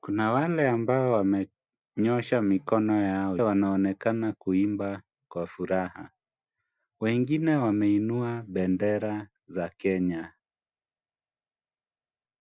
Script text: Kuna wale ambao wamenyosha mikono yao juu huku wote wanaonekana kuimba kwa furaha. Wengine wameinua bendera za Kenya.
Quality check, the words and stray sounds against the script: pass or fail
fail